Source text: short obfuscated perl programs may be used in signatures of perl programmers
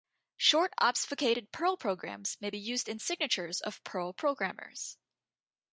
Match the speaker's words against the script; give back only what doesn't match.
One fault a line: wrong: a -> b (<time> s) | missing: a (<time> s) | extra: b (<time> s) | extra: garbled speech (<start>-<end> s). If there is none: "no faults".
no faults